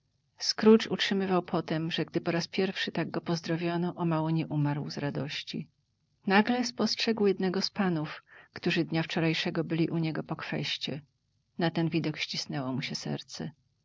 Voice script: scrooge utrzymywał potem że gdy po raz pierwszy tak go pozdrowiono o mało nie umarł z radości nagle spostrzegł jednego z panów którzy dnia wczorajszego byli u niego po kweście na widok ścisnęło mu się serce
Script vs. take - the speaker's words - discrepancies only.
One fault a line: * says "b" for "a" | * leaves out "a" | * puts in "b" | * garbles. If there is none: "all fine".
* puts in "ten"